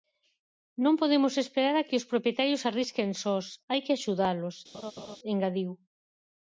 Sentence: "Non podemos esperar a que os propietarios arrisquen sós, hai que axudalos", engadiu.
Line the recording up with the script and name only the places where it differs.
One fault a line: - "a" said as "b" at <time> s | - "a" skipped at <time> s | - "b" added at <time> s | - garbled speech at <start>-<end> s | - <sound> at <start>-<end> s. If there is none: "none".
- laugh at 4.7-5.2 s